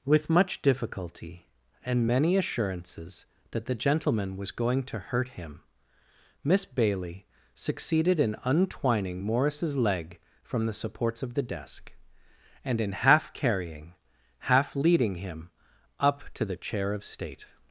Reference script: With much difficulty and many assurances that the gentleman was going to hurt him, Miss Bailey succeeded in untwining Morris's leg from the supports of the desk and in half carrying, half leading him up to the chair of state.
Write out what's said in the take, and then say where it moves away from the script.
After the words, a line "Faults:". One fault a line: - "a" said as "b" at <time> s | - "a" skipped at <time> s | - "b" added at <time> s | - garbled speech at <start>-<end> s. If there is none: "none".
With much difficulty and many assurances that the gentleman was going to hurt him, Miss Bailey succeeded in untwining Morris's leg from the supports of the desk and in half carrying, half leading him up to the chair of state.
Faults:
none